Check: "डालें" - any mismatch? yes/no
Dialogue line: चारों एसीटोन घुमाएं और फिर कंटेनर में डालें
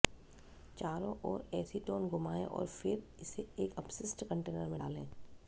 no